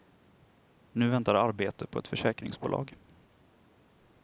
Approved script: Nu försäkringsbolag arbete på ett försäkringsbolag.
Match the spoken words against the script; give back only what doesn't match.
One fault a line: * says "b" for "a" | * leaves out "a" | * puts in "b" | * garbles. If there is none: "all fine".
* says "väntar" for "försäkringsbolag"